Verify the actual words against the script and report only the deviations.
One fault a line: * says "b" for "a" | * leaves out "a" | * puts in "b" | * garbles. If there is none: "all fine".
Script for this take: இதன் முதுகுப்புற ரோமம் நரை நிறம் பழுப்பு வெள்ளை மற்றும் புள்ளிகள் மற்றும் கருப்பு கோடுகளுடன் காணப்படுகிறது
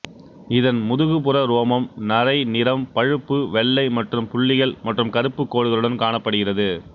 all fine